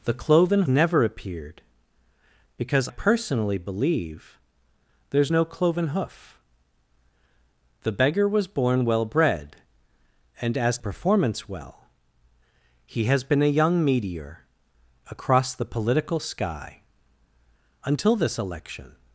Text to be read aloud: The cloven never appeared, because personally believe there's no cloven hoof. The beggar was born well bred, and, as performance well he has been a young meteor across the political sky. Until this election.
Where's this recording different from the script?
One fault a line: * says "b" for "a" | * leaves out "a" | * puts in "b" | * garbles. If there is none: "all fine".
all fine